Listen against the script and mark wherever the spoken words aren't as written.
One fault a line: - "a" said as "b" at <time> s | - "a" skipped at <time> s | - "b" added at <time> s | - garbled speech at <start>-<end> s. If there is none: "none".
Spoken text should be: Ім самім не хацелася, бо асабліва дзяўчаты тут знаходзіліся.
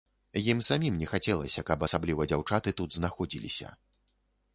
- "бо" said as "каб" at 1.7 s